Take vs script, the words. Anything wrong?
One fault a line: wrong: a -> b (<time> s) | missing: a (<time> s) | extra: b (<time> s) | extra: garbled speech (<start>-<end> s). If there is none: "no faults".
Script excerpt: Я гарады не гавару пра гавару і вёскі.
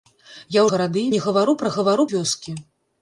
no faults